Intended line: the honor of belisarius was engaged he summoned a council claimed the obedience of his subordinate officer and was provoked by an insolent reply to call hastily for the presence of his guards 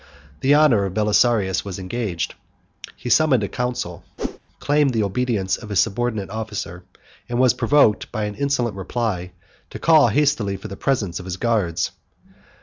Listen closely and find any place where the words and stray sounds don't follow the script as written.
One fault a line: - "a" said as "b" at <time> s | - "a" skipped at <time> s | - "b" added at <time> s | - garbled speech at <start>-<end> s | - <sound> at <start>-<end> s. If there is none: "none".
- whoosh at 4.2-4.4 s